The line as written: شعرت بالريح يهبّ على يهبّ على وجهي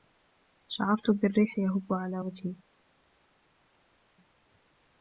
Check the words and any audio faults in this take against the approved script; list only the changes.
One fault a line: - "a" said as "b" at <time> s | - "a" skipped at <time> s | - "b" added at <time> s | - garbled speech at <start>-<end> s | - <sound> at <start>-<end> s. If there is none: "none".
- "يهبّ على" skipped at 2.2 s